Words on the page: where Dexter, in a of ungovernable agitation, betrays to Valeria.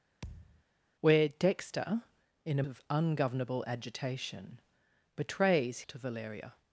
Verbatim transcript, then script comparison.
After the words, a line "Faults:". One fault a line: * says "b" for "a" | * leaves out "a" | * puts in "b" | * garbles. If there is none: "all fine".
where Dexter, in a of ungovernable agitation, betrays to Valeria.
Faults:
all fine